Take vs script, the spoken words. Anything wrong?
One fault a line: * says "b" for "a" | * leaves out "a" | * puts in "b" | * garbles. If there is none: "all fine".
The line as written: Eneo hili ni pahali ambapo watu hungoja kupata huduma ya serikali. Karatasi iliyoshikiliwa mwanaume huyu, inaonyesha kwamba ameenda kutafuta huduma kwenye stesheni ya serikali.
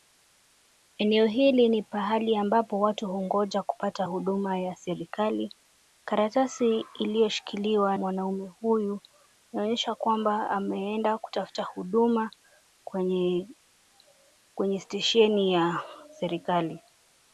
all fine